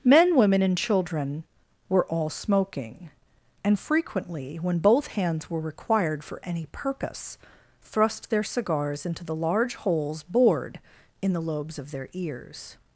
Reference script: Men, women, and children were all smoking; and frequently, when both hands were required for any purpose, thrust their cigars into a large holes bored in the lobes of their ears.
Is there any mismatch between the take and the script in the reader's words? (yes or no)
yes